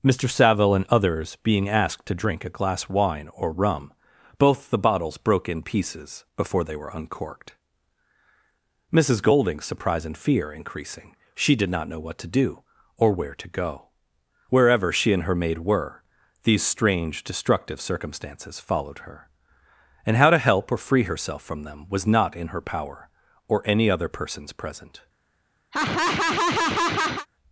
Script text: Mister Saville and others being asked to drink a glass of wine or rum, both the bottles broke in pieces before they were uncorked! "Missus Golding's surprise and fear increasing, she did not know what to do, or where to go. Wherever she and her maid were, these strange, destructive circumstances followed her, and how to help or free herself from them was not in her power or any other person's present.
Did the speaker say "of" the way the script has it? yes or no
no